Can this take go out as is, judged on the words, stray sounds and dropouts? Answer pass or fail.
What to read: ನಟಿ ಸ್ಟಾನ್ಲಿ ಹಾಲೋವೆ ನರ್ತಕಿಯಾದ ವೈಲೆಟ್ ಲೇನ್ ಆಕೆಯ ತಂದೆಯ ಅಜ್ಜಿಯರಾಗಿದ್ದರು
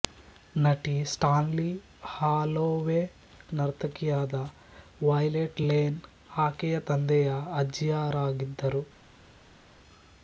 pass